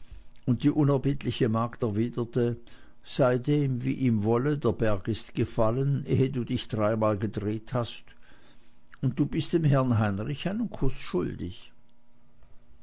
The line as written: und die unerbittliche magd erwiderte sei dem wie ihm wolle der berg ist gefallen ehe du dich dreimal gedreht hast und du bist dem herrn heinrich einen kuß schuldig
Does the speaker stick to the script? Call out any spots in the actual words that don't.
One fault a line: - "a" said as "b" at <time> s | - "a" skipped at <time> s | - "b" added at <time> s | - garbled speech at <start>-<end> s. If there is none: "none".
none